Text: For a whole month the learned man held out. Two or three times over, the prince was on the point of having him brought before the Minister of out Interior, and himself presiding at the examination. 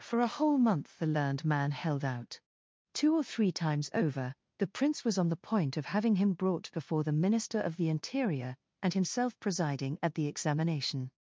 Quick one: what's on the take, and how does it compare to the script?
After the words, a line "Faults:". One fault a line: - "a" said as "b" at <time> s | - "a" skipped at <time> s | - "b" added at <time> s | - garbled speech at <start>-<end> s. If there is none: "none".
For a whole month the learned man held out. Two or three times over, the prince was on the point of having him brought before the Minister of the Interior, and himself presiding at the examination.
Faults:
- "out" said as "the" at 7.8 s